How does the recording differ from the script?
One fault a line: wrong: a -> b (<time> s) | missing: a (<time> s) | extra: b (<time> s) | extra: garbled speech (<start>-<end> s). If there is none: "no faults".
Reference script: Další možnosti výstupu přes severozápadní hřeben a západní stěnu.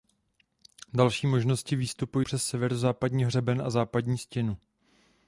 no faults